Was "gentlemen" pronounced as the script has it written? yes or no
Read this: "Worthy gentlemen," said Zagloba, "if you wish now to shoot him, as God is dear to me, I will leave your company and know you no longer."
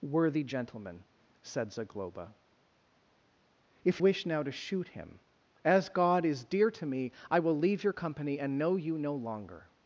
yes